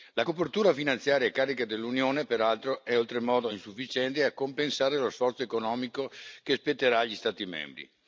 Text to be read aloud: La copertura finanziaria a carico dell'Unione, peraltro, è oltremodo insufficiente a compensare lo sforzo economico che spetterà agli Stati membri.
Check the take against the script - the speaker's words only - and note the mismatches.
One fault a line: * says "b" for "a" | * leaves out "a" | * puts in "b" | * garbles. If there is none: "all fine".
all fine